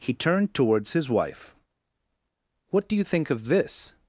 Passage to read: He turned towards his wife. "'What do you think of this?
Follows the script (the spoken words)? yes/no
yes